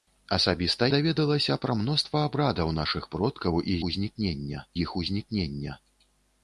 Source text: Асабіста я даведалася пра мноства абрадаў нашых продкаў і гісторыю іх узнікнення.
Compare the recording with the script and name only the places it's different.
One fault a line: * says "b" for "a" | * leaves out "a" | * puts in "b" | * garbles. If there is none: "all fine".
* leaves out "я"
* says "узнікнення" for "гісторыю"